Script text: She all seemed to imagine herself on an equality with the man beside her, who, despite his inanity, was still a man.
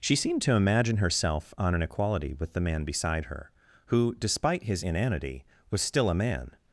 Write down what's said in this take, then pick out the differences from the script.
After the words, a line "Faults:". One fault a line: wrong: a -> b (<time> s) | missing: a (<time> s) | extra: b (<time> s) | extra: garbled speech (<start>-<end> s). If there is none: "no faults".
She seemed to imagine herself on an equality with the man beside her, who, despite his inanity, was still a man.
Faults:
missing: all (0.1 s)